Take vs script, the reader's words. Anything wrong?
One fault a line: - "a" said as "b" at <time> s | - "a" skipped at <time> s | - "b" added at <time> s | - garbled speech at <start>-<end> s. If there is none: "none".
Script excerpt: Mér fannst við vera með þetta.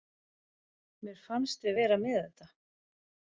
none